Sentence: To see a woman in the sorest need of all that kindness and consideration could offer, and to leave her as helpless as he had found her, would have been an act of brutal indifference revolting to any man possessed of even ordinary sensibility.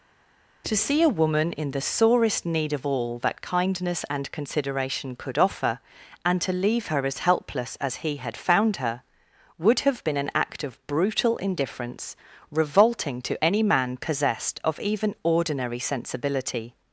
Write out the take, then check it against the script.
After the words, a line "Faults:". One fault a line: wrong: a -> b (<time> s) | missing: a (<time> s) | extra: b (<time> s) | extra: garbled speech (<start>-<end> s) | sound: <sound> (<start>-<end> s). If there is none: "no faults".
To see a woman in the sorest need of all that kindness and consideration could offer, and to leave her as helpless as he had found her, would have been an act of brutal indifference revolting to any man possessed of even ordinary sensibility.
Faults:
no faults